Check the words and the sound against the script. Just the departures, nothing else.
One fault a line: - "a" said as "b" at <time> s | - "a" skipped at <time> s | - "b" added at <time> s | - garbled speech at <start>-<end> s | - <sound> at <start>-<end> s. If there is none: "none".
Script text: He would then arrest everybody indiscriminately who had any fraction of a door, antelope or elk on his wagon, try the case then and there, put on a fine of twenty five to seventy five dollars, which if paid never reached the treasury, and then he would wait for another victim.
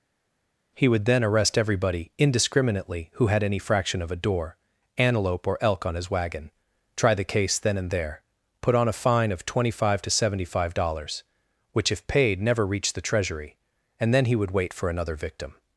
none